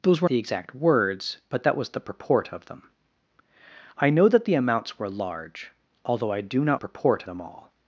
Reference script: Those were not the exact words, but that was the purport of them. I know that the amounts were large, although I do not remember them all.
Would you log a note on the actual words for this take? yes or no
yes